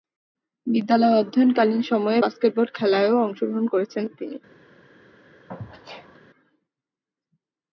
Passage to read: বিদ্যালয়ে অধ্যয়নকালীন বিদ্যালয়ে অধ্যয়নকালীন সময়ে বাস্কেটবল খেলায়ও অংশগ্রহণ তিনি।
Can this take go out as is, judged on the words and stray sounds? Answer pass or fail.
fail